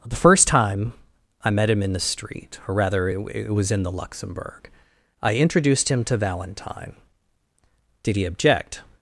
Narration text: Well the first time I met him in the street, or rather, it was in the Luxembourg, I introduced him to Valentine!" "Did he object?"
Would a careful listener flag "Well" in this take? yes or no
yes